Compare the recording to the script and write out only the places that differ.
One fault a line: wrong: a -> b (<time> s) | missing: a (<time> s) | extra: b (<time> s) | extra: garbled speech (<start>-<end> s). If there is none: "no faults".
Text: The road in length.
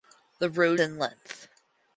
no faults